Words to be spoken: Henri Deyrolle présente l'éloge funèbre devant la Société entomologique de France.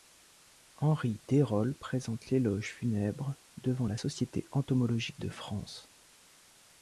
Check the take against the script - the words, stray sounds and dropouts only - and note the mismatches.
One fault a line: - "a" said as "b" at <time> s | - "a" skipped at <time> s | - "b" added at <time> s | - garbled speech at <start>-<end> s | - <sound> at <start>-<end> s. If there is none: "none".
none